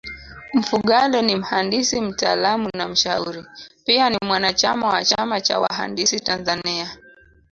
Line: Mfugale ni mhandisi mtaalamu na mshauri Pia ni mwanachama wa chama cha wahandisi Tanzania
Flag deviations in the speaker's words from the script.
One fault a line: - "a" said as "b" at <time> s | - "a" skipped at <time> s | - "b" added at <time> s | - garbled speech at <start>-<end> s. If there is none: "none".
none